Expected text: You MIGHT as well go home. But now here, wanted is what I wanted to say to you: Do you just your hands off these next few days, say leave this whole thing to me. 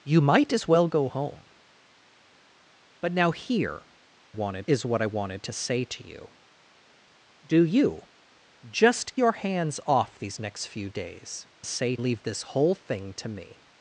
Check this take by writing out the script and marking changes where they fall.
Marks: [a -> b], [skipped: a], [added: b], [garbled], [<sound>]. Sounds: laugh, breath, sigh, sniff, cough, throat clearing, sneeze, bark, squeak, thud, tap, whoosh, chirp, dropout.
You MIGHT as well go home. But now here, wanted is what I wanted to say to you: Do you just your hands off these next few days, say leave this whole thing to me.